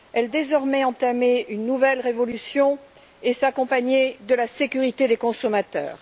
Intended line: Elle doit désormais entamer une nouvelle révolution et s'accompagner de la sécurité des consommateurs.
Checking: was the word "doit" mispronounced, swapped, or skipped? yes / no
yes